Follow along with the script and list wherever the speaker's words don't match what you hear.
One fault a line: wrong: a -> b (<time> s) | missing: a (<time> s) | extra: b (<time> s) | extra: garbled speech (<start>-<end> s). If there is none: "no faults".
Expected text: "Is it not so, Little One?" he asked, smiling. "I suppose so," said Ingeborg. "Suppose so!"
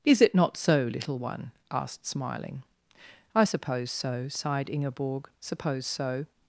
missing: he (1.5 s)
wrong: said -> sighed (4.3 s)